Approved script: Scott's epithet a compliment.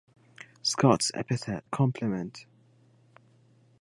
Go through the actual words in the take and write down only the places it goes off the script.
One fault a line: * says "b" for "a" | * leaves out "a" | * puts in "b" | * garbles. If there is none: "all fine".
all fine